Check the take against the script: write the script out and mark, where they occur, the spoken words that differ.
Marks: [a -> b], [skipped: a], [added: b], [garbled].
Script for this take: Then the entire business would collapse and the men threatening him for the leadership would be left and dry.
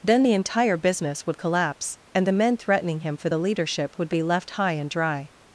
Then the entire business would collapse and the men threatening him for the leadership would be left [added: high] and dry.